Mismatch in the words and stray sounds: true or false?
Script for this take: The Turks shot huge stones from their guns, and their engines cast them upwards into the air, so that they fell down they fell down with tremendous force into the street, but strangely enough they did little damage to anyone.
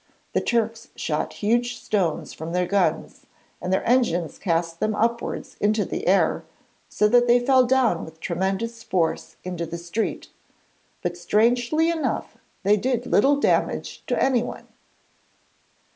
true